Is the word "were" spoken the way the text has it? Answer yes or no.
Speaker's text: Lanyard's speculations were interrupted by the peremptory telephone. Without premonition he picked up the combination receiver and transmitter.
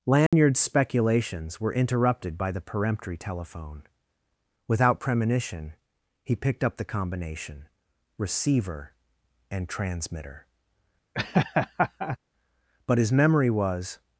yes